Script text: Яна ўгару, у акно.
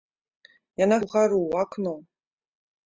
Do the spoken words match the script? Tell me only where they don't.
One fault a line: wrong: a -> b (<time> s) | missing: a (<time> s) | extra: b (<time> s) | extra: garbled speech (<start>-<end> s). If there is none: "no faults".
no faults